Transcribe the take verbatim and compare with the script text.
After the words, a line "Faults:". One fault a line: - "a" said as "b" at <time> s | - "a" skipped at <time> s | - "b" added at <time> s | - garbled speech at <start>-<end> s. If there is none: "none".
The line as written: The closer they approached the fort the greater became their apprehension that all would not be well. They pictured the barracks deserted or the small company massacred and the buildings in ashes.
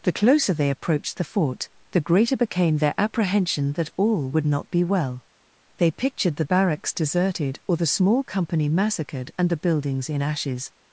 The closer they approached the fort the greater became their apprehension that all would not be well. They pictured the barracks deserted or the small company massacred and the buildings in ashes.
Faults:
none